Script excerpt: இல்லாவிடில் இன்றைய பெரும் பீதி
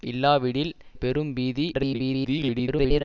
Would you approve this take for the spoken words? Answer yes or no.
no